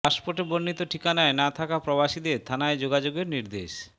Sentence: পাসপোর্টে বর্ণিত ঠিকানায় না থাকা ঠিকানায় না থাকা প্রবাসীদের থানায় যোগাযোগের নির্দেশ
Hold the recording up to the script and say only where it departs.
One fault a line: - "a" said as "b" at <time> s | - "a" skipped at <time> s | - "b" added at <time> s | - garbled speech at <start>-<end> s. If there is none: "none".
- "ঠিকানায় না থাকা" skipped at 1.8 s